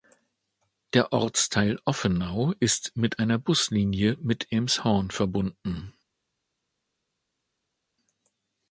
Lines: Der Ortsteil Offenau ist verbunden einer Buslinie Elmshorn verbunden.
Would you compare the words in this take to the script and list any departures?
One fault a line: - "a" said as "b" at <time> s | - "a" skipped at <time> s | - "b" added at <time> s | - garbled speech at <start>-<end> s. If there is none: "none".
- "verbunden" said as "mit" at 3.0 s
- "mit" added at 4.2 s